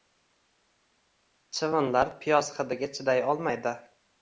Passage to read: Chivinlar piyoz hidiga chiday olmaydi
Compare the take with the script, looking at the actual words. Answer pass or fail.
pass